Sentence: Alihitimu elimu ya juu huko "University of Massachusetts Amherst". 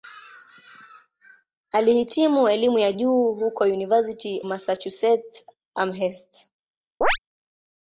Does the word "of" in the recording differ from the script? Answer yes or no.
yes